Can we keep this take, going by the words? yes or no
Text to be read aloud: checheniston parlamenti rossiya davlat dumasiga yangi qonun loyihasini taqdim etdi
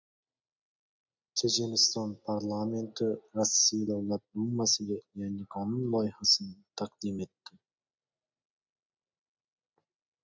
yes